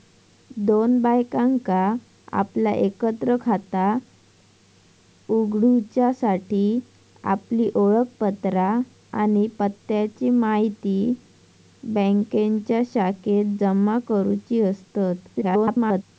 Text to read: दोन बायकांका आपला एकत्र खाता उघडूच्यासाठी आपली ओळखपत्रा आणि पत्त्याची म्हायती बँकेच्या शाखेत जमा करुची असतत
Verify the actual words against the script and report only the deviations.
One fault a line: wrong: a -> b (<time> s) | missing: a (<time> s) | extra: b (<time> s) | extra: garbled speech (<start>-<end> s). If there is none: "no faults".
extra: garbled speech (15.3-16.0 s)